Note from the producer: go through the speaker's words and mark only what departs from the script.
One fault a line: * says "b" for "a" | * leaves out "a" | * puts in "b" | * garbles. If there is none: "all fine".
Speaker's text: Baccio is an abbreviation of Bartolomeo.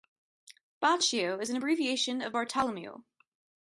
all fine